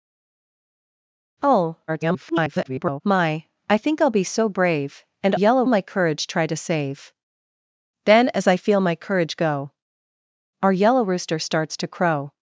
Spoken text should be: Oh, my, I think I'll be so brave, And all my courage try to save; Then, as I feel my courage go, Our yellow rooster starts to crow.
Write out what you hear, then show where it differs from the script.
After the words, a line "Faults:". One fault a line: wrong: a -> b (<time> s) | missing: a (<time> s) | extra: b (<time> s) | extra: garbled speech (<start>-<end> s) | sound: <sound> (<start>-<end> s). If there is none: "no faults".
Oh, [garbled] my, I think I'll be so brave, And yellow my courage try to save; Then, as I feel my courage go, Our yellow rooster starts to crow.
Faults:
extra: garbled speech (1.9-3.0 s)
wrong: all -> yellow (5.3 s)